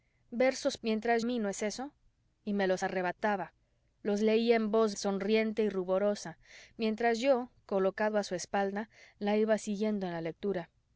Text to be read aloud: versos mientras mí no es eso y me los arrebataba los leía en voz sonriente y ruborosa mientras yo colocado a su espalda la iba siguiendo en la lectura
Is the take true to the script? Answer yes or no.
yes